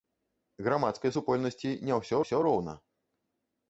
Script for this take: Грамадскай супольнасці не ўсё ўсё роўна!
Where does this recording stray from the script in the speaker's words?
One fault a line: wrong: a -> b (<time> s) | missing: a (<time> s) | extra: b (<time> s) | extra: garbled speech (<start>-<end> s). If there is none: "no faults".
no faults